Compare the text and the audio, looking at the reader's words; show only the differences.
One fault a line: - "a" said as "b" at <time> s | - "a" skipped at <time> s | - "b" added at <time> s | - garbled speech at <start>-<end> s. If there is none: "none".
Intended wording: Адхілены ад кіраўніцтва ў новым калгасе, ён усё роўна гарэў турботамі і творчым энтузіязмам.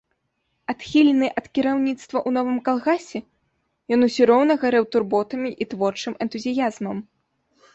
none